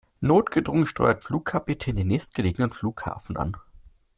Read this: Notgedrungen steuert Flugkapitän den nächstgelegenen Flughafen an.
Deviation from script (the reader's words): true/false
false